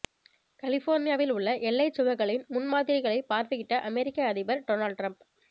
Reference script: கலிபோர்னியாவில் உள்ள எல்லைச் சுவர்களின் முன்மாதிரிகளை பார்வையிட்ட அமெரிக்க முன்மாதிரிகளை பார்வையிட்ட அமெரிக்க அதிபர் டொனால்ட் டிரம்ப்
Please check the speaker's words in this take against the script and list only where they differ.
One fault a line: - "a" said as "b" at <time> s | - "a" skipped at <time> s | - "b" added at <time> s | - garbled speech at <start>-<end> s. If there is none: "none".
- "முன்மாதிரிகளை பார்வையிட்ட அமெரிக்க" skipped at 4.3 s